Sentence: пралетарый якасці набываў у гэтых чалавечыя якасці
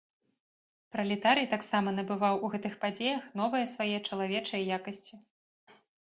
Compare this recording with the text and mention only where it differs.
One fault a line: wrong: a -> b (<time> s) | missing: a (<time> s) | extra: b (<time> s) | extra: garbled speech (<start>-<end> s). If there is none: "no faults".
wrong: якасці -> таксама (1.5 s)
extra: падзеях новыя свае (2.8 s)